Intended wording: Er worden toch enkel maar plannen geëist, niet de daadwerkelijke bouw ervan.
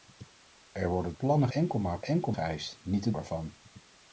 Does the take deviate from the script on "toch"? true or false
true